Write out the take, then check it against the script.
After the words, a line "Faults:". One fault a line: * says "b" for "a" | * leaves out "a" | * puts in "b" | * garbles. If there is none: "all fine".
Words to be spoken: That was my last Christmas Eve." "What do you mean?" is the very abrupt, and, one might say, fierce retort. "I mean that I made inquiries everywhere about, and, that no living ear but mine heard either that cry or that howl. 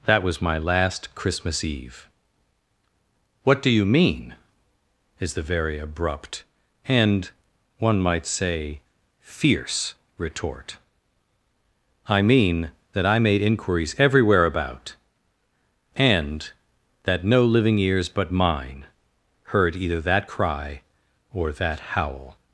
That was my last Christmas Eve." "What do you mean?" is the very abrupt, and, one might say, fierce retort. "I mean that I made inquiries everywhere about, and, that no living ears but mine heard either that cry or that howl.
Faults:
* says "ears" for "ear"